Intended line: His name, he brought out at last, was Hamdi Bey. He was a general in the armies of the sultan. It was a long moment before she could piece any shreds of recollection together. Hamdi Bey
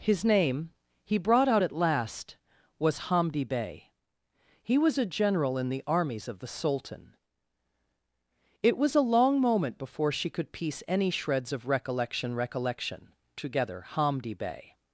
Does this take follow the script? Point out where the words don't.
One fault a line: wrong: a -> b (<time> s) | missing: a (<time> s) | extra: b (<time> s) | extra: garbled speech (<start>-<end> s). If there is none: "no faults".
extra: recollection (12.3 s)